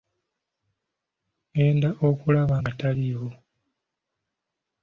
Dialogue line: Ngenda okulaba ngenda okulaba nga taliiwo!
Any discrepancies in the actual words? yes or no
yes